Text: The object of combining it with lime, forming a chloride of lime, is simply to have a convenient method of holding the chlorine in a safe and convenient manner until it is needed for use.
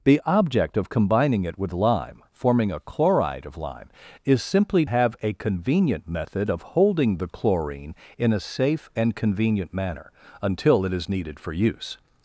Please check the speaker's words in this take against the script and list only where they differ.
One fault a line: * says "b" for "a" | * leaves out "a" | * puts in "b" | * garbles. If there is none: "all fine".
* leaves out "to"